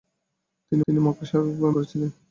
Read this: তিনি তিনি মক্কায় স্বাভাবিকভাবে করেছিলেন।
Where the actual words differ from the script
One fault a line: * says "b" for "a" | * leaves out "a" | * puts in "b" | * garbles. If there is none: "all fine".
all fine